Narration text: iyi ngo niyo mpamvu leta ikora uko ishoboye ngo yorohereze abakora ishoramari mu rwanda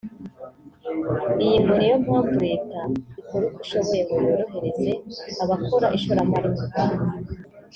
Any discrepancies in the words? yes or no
no